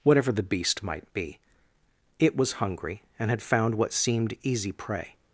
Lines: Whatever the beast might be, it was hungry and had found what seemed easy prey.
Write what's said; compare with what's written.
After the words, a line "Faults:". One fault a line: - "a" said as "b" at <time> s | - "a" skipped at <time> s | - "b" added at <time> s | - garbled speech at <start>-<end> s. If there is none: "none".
Whatever the beast might be, it was hungry and had found what seemed easy prey.
Faults:
none